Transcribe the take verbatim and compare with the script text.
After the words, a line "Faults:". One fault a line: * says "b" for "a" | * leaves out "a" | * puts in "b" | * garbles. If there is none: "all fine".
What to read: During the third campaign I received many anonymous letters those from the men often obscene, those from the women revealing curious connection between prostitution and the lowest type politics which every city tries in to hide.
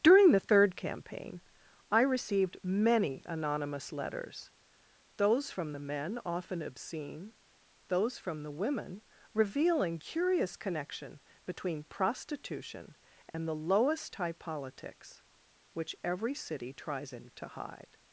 During the third campaign I received many anonymous letters those from the men often obscene, those from the women revealing curious connection between prostitution and the lowest type politics which every city tries in to hide.
Faults:
all fine